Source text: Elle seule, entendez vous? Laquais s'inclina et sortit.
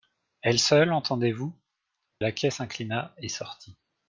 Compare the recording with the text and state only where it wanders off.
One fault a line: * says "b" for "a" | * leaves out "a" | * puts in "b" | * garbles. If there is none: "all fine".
all fine